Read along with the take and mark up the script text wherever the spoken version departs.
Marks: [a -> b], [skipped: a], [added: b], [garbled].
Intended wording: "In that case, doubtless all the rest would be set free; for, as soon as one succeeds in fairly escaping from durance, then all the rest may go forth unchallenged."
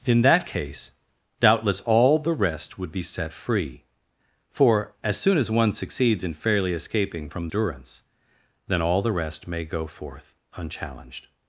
"In that case, doubtless all the rest would be set free; for, as soon as one succeeds in fairly escaping from durance, then all the rest may go forth unchallenged."